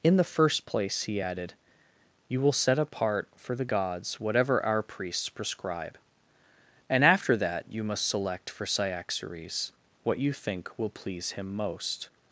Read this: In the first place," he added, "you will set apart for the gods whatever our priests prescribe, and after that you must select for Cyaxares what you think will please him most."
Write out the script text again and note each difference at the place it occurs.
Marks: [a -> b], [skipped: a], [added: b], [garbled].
In the first place," he added, "you will set apart for the gods whatever our priests prescribe, and after that you must select for Cyaxares what you think will please him most."